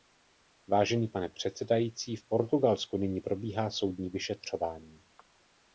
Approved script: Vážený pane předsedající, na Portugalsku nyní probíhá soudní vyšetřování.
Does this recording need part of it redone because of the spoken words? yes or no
yes